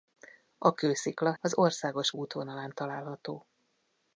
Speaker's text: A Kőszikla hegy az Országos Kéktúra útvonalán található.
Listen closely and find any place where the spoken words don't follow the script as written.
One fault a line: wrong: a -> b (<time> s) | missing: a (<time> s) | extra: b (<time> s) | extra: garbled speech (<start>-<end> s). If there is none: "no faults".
missing: hegy (1.3 s)
missing: Kéktúra (2.1 s)